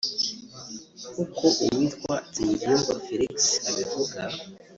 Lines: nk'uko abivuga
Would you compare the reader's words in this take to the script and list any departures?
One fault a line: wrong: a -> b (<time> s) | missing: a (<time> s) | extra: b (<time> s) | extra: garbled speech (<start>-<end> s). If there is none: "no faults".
extra: uwitwa Nsengiyumva Felix (1.6 s)